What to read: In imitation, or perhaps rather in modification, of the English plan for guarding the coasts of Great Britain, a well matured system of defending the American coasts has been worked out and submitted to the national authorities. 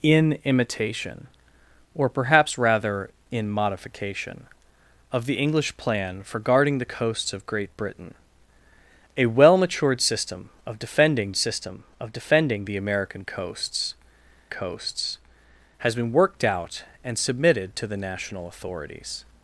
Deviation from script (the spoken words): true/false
true